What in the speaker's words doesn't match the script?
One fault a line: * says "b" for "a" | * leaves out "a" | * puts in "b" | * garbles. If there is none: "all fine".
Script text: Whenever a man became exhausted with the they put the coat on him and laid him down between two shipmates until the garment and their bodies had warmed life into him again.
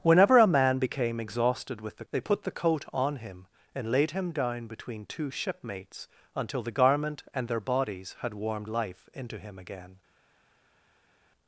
all fine